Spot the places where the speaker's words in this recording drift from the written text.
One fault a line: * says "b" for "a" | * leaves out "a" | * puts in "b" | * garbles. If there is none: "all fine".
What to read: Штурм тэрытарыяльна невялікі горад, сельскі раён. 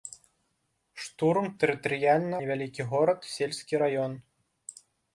all fine